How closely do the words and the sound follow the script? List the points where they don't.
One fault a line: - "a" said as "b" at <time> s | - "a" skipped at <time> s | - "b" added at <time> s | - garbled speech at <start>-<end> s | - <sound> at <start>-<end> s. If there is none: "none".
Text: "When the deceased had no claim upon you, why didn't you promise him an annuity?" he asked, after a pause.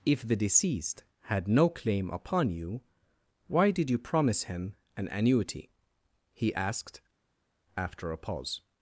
- "When" said as "If" at 0.0 s
- "didn't" said as "did" at 3.7 s